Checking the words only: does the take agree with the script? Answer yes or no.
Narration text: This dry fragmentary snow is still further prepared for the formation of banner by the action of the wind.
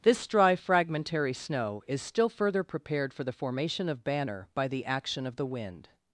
yes